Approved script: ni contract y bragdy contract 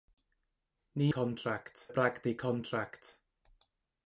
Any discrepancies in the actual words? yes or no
no